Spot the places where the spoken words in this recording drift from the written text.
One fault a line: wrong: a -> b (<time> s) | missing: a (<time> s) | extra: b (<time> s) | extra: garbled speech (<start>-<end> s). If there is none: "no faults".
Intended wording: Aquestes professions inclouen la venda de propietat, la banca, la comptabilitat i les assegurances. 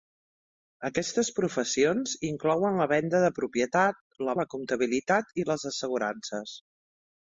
missing: banca (4.4 s)